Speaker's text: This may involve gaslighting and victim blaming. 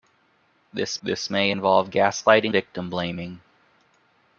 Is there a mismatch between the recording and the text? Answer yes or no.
yes